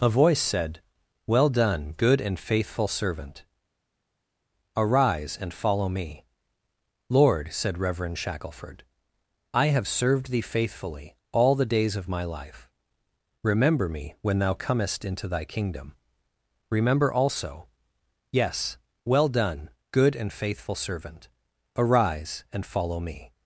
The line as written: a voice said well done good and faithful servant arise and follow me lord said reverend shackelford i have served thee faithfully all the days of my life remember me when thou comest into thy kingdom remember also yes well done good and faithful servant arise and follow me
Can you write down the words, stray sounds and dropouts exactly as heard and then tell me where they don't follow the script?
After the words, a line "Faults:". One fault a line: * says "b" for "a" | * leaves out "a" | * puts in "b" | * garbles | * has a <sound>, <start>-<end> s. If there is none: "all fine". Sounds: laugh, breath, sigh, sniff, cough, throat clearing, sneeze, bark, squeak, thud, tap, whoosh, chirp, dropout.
a voice said well done good and faithful servant arise and follow me lord said reverend shackelford i have served thee faithfully all the days of my life remember me when thou comest into thy kingdom remember also yes well done good and faithful servant arise and follow me
Faults:
all fine